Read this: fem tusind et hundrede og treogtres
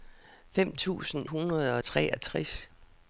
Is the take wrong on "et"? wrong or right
wrong